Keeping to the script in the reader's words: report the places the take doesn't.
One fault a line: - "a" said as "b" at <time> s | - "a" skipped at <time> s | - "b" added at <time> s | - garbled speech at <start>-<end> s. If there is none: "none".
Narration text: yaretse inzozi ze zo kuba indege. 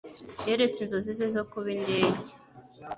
none